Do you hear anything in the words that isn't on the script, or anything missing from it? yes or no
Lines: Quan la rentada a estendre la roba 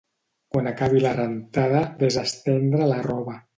yes